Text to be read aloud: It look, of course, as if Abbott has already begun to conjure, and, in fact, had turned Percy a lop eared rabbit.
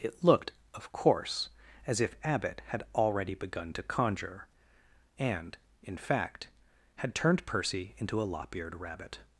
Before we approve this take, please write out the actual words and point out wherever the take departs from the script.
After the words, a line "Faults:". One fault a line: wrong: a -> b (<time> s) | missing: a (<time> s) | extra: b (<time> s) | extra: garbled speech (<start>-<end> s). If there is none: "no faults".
It looked, of course, as if Abbott had already begun to conjure, and, in fact, had turned Percy into a lop eared rabbit.
Faults:
wrong: look -> looked (0.2 s)
wrong: has -> had (2.7 s)
extra: into (8.0 s)